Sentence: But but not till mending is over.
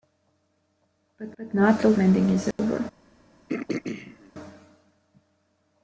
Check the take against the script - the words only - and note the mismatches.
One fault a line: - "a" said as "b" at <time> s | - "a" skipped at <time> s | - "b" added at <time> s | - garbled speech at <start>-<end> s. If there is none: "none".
none